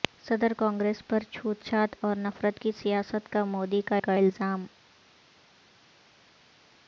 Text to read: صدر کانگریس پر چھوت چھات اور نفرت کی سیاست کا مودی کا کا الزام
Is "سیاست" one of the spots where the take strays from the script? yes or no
no